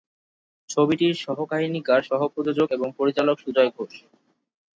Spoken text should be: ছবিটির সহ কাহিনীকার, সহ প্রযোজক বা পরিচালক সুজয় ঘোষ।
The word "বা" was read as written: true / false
false